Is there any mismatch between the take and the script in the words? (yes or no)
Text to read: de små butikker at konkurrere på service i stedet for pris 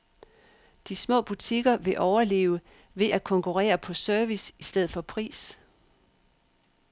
yes